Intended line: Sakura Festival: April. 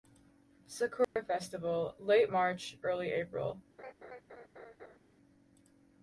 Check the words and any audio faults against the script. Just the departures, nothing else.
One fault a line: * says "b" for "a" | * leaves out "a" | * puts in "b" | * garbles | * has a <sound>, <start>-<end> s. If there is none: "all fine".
* has a dropout, 1.0-1.2 s
* puts in "Late March Early"
* has a laugh, 3.8-5.0 s